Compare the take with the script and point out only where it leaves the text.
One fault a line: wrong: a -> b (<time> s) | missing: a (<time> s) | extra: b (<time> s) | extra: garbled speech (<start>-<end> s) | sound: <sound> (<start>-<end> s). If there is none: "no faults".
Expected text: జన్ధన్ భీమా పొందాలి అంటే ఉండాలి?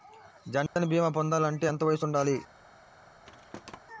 sound: dropout (0.7-0.8 s)
extra: ఎంత వయసు (1.7 s)
sound: thud (3.2-3.8 s)